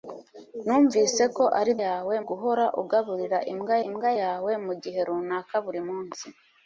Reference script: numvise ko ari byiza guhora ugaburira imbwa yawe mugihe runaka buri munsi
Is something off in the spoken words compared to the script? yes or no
yes